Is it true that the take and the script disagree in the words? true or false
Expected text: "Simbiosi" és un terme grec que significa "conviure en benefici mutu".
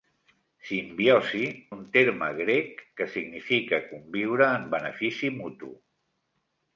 true